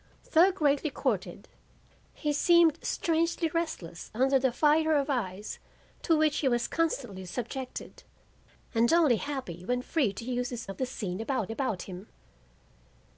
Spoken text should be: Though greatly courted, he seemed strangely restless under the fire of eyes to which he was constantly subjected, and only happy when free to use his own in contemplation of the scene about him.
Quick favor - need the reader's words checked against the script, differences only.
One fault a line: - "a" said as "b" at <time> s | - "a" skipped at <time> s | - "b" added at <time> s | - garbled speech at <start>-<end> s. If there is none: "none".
- "own in contemplation" skipped at 10.7 s
- "about" added at 11.5 s